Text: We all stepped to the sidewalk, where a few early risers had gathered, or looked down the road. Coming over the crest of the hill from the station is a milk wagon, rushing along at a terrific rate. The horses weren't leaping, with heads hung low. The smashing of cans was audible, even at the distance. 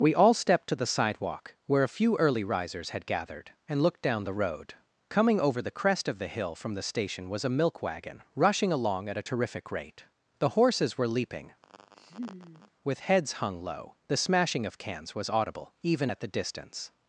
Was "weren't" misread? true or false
true